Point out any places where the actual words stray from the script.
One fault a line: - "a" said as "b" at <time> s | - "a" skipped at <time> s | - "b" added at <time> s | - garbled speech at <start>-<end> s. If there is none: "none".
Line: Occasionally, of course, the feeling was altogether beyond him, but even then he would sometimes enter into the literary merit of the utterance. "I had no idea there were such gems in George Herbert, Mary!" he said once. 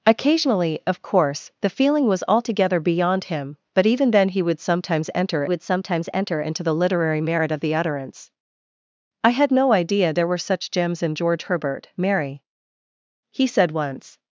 - "would sometimes enter" added at 5.4 s